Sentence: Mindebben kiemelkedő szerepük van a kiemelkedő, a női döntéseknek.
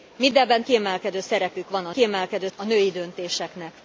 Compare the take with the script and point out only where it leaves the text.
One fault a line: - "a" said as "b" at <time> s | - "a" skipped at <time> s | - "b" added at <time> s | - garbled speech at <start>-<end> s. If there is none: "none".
none